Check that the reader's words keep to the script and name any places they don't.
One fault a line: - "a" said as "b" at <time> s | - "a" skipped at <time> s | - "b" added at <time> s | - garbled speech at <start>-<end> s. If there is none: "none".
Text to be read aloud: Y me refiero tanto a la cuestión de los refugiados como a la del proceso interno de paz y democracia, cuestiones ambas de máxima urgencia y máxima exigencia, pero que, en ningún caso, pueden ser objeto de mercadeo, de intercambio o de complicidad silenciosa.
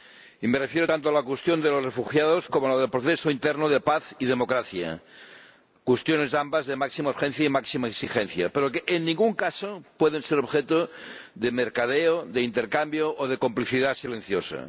none